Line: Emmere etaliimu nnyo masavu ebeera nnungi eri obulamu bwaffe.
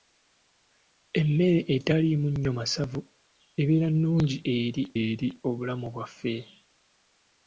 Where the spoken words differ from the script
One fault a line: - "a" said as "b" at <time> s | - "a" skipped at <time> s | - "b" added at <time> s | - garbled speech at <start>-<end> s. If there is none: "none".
- "eri" added at 5.0 s